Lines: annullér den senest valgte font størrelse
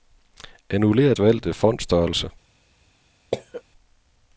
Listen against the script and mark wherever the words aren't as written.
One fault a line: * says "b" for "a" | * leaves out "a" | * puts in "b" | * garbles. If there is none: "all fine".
* leaves out "den senest"